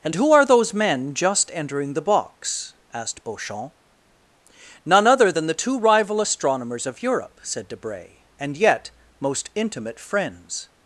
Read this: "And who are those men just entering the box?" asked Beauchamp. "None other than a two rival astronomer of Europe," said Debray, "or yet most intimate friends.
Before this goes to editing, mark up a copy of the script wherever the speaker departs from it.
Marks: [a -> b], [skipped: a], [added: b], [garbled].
"And who are those men just entering the box?" asked Beauchamp. "None other than [a -> the] two rival [astronomer -> astronomers] of Europe," said Debray, ["or -> and] yet most intimate friends.